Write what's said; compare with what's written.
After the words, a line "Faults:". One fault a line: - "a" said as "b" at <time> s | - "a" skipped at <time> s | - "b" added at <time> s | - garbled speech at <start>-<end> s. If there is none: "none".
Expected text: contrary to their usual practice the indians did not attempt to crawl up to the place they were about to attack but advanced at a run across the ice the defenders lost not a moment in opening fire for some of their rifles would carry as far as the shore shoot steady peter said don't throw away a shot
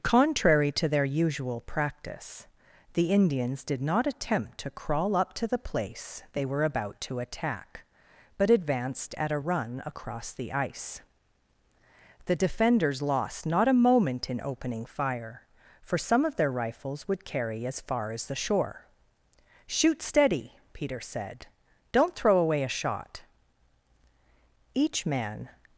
contrary to their usual practice the indians did not attempt to crawl up to the place they were about to attack but advanced at a run across the ice the defenders lost not a moment in opening fire for some of their rifles would carry as far as the shore shoot steady peter said don't throw away a shot each man
Faults:
- "each man" added at 24.7 s